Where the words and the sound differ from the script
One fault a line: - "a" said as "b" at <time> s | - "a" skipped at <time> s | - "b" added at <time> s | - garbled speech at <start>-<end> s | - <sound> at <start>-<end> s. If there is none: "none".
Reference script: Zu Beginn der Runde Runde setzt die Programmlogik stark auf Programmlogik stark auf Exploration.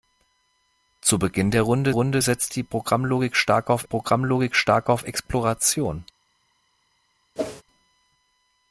- whoosh at 7.4-7.6 s